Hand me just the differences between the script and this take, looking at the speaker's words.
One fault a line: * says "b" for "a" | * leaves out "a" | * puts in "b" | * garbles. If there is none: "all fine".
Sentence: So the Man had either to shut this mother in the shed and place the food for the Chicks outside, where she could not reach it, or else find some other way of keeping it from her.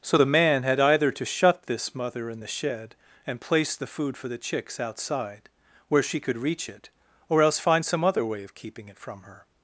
* leaves out "not"